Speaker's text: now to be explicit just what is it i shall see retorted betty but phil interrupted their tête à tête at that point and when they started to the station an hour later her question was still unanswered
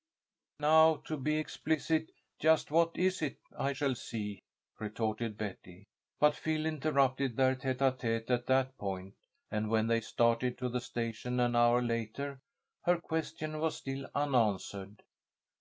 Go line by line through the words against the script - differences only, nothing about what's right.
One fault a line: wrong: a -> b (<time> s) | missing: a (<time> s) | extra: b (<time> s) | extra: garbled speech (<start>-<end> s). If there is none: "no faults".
no faults